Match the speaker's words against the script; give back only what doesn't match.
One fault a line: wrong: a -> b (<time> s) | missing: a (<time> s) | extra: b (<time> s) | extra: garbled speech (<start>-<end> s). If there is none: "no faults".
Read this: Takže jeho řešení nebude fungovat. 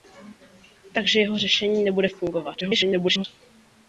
extra: garbled speech (2.6-3.2 s)